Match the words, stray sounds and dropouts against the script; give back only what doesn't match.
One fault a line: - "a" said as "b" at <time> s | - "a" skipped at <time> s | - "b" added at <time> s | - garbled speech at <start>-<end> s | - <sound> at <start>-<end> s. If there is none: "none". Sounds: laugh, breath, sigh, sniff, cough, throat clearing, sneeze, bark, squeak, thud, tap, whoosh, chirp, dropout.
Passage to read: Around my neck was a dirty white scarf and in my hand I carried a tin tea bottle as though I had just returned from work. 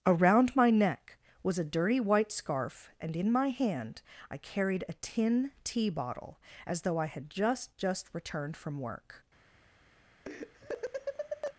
- "just" added at 7.8 s
- laugh at 10.3-11.6 s